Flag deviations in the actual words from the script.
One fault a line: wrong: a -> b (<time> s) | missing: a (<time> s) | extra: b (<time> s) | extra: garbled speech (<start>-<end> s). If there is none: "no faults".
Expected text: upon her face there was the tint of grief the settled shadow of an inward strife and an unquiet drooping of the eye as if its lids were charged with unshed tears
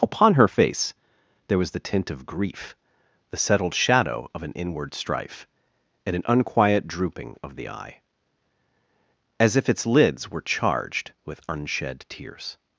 no faults